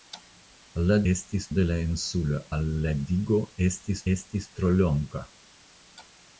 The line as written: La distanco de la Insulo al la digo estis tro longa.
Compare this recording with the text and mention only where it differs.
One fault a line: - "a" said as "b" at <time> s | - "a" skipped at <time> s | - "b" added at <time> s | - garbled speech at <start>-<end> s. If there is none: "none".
- "distanco" said as "estis" at 1.1 s
- "estis" added at 4.1 s